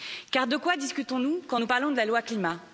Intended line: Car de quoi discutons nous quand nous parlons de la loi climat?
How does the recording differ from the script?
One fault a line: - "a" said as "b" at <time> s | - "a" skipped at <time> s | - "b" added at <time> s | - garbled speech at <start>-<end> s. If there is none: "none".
none